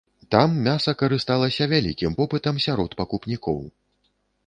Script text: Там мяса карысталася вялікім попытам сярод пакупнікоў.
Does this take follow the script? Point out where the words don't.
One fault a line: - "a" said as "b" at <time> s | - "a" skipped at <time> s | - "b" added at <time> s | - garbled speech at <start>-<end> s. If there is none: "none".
none